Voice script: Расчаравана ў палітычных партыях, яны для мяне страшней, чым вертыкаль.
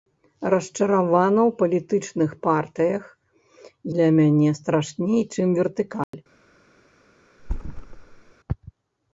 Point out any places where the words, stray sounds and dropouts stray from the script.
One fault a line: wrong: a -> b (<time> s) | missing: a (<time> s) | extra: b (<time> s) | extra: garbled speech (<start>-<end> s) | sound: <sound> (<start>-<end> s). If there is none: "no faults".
missing: яны (3.0 s)
sound: dropout (6.0-6.1 s)
sound: thud (7.4-8.3 s)